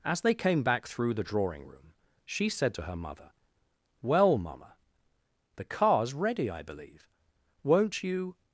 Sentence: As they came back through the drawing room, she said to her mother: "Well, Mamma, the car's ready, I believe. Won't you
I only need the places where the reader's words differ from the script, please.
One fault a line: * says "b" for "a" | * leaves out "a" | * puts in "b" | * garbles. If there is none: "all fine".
all fine